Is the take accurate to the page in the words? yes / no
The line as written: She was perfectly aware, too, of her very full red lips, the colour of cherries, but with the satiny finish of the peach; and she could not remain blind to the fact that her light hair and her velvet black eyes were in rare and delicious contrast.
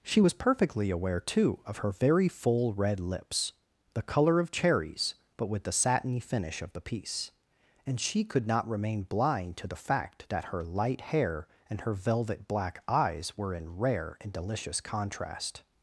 no